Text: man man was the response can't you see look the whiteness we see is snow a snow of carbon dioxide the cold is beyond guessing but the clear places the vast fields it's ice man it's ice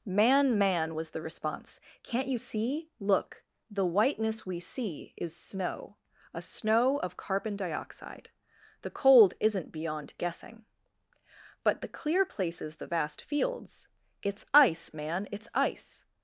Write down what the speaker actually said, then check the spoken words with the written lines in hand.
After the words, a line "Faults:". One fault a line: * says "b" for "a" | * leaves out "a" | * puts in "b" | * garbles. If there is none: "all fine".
man man was the response can't you see look the whiteness we see is snow a snow of carbon dioxide the cold isn't beyond guessing but the clear places the vast fields it's ice man it's ice
Faults:
* says "isn't" for "is"